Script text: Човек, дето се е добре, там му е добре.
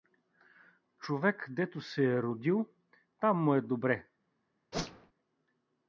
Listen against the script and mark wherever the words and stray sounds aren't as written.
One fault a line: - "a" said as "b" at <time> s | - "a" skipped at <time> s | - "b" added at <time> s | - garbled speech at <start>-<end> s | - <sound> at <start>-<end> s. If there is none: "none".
- "добре" said as "родил" at 2.2 s
- whoosh at 4.7-5.1 s